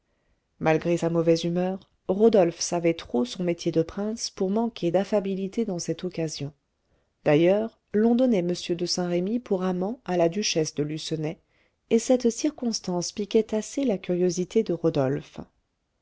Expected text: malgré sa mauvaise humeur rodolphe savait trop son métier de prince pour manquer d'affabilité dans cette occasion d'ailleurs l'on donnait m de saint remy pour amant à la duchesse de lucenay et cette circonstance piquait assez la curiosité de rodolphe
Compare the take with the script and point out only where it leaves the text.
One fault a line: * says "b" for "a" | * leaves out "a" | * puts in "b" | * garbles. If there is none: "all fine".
all fine